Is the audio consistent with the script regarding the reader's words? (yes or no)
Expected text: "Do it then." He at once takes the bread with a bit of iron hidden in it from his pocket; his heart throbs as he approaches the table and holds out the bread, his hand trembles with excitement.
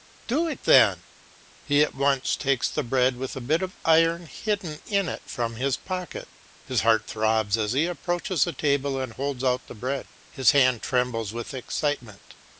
yes